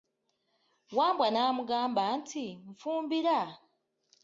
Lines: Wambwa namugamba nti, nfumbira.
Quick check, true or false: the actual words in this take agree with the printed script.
true